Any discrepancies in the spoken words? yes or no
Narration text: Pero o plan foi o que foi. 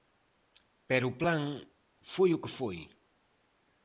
no